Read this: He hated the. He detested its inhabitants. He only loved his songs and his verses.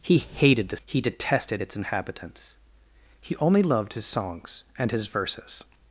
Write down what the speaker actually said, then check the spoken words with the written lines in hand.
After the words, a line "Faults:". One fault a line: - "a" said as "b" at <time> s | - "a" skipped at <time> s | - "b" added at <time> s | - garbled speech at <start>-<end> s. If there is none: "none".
He hated the. He detested its inhabitants. He only loved his songs and his verses.
Faults:
none